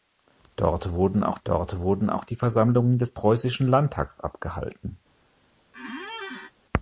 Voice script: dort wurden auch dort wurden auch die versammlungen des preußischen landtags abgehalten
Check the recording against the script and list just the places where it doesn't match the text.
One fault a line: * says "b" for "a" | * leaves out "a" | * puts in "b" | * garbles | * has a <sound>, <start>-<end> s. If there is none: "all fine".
* has a squeak, 5.7-6.5 s